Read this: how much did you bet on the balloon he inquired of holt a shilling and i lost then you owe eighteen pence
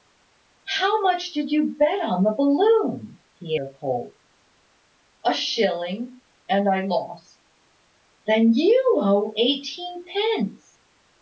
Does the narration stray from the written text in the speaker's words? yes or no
yes